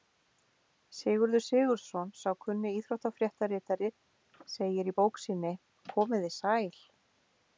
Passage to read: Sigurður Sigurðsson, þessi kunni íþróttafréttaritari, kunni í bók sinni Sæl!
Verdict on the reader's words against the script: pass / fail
fail